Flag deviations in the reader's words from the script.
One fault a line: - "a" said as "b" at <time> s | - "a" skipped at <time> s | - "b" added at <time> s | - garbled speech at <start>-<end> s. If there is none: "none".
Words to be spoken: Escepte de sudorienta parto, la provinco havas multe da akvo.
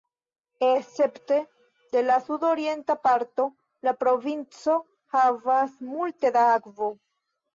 - "la" added at 2.0 s